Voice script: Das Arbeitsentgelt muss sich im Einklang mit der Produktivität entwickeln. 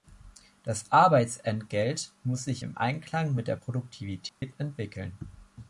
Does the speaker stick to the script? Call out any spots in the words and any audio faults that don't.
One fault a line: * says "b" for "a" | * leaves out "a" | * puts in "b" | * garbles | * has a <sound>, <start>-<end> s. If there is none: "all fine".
* has a dropout, 4.3-4.4 s